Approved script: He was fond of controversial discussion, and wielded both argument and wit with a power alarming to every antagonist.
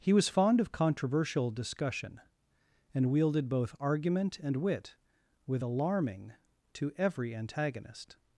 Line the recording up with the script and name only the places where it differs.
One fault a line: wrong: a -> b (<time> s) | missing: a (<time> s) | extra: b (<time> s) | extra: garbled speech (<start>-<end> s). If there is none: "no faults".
missing: a power (5.6 s)